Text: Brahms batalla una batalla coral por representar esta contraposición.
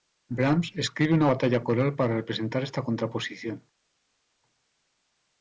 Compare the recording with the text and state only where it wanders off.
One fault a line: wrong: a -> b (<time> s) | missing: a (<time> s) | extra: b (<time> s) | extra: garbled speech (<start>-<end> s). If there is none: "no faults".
wrong: batalla -> escribe (0.8 s)
wrong: por -> para (1.9 s)